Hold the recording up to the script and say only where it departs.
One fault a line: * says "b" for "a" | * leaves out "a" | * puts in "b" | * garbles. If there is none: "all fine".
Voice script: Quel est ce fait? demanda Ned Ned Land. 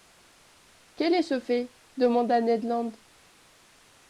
* leaves out "Ned"